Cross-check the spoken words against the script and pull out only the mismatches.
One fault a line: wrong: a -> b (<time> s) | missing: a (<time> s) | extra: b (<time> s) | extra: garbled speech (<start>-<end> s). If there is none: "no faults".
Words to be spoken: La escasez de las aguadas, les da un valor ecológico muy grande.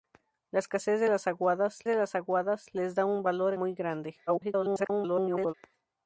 extra: de las aguadas (1.9 s)
missing: ecológico (3.5 s)
extra: garbled speech (4.3-5.5 s)